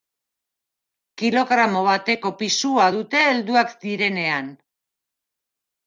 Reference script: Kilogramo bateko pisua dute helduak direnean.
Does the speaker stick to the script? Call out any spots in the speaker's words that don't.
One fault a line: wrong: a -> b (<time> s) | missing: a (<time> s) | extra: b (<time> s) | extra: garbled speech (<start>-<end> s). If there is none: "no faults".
no faults